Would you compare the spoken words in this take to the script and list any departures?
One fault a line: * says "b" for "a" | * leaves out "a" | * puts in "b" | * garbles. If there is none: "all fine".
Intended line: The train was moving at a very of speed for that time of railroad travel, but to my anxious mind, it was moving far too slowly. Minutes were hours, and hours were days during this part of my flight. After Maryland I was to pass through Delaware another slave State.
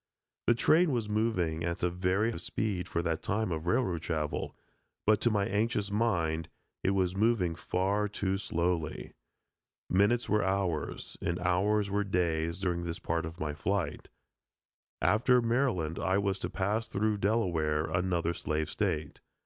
all fine